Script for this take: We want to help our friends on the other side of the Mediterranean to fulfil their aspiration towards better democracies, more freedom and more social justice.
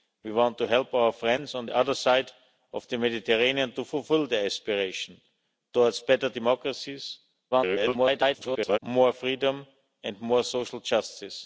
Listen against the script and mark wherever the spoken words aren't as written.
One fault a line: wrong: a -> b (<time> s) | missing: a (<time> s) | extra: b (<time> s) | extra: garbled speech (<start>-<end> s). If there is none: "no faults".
extra: garbled speech (7.5-8.8 s)